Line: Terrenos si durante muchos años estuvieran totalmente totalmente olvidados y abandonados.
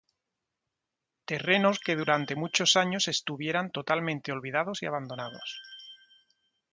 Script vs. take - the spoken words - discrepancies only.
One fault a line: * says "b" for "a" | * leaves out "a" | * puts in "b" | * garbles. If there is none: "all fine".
* says "que" for "si"
* leaves out "totalmente"